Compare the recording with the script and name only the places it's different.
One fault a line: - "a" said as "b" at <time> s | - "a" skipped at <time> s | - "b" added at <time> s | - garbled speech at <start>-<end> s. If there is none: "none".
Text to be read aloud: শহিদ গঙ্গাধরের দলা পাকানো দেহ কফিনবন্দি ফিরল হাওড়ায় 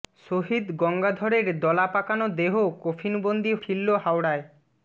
none